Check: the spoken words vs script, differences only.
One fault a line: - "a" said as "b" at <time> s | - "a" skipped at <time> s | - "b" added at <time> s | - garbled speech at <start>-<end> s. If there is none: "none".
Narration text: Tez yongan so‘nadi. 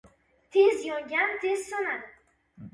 - "tez" added at 1.4 s